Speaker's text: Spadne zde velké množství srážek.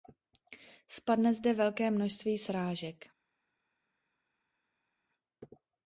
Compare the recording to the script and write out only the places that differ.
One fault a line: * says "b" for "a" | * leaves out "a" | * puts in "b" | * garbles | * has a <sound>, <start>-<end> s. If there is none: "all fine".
all fine